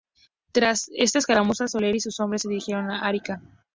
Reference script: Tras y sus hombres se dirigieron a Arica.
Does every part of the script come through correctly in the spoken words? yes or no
no